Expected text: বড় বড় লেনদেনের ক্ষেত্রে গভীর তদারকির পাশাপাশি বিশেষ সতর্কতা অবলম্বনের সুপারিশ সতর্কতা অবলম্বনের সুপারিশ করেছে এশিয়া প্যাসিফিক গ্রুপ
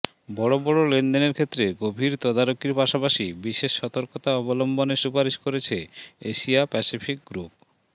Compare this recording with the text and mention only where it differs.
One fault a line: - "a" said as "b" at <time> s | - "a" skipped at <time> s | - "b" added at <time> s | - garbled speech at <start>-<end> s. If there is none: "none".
- "সতর্কতা অবলম্বনের সুপারিশ" skipped at 5.4 s